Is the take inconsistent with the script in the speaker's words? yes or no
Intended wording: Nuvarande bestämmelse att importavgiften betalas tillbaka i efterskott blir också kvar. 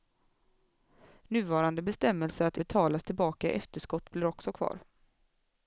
yes